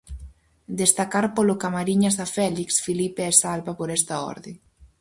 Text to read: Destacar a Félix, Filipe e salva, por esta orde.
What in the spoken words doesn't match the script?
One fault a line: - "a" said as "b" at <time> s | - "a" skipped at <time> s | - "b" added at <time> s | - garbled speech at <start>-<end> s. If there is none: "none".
- "polo Camariñas" added at 1.4 s